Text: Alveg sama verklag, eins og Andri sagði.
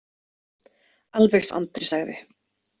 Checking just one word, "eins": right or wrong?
wrong